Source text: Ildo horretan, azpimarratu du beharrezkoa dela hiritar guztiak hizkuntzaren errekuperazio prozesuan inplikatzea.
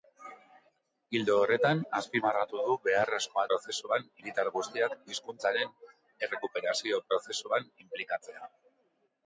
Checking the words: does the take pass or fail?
fail